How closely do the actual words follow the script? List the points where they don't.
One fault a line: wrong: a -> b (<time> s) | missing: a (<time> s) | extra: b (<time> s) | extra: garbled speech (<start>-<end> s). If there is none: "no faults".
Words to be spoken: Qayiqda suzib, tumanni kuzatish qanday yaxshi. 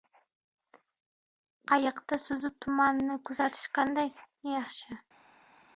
no faults